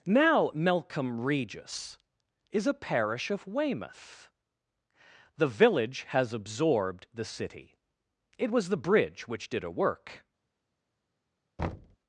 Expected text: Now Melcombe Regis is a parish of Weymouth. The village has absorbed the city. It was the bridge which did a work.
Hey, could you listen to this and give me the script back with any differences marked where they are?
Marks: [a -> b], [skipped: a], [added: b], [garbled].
Now Melcombe Regis is a parish of Weymouth. The village has absorbed the city. It was the bridge which did a work.